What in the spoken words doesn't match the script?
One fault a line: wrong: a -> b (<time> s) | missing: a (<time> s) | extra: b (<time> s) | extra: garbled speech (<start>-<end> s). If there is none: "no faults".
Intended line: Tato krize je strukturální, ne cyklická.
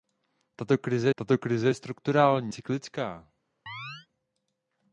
extra: tato krize (1.1 s)
missing: ne (2.5 s)